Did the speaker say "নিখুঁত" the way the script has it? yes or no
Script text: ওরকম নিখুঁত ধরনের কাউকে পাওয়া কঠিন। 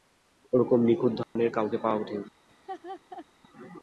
yes